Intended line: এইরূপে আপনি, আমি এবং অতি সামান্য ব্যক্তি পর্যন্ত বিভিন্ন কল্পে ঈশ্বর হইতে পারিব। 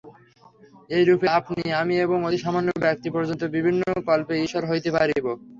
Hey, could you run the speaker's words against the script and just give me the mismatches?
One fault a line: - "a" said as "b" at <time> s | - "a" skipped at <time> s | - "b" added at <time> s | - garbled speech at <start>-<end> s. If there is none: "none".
none